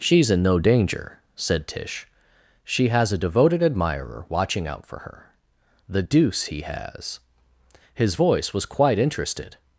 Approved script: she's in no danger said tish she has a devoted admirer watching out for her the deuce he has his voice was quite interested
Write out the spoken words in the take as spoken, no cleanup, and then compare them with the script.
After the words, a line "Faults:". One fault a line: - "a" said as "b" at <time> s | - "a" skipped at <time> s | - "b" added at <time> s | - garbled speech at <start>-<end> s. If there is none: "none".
she's in no danger said tish she has a devoted admirer watching out for her the deuce he has his voice was quite interested
Faults:
none